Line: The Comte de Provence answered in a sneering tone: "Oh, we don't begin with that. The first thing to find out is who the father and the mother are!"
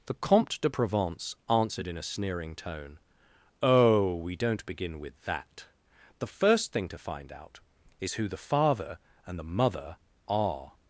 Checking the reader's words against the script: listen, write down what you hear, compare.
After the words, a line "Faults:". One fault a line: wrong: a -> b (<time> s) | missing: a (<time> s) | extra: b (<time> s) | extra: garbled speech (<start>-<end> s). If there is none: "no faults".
The Comte de Provence answered in a sneering tone: "Oh, we don't begin with that. The first thing to find out is who the father and the mother are!"
Faults:
no faults